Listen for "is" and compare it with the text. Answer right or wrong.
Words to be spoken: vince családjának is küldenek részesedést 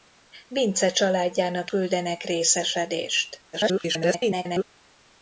wrong